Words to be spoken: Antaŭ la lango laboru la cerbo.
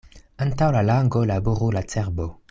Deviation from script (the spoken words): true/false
false